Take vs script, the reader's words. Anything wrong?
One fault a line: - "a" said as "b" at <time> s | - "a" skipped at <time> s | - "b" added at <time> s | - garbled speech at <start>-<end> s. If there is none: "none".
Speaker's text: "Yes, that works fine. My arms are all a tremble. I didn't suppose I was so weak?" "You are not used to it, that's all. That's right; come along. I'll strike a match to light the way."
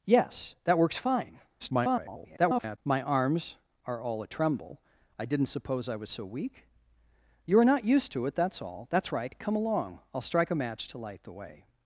- garbled speech at 1.6-2.8 s